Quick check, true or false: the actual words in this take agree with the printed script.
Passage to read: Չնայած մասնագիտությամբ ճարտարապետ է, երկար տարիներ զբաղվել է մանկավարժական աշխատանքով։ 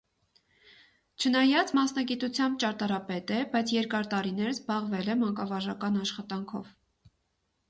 false